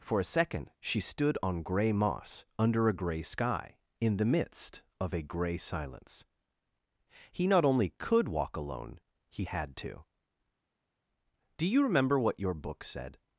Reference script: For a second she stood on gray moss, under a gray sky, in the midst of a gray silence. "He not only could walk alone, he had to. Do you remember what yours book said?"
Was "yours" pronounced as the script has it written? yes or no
no